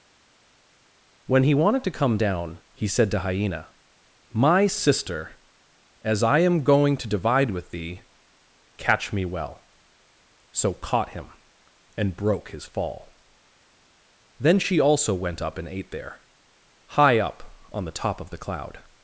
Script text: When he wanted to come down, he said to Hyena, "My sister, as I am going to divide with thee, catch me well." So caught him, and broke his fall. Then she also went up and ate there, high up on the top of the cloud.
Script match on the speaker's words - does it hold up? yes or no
yes